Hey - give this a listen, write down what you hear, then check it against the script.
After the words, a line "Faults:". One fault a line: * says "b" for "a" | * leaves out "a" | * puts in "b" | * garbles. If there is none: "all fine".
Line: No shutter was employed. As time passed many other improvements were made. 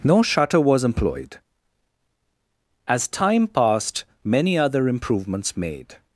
No shutter was employed. As time passed many other improvements made.
Faults:
* leaves out "were"